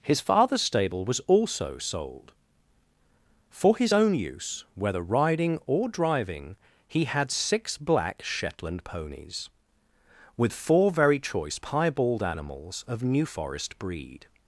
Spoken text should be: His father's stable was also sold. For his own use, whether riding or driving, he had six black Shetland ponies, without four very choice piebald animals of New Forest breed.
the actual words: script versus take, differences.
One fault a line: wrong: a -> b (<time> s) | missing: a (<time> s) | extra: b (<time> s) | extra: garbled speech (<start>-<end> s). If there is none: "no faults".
wrong: without -> with (10.4 s)